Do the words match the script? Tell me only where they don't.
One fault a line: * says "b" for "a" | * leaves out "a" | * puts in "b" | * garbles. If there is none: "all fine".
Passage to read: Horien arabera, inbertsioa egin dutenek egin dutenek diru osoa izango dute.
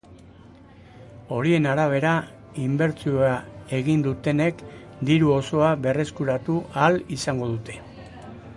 * says "diru osoa berreskuratu ahal" for "egin dutenek diru osoa"